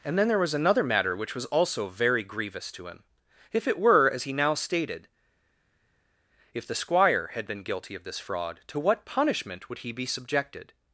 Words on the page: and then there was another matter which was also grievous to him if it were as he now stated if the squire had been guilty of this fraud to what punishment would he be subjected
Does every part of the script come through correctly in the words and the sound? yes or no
no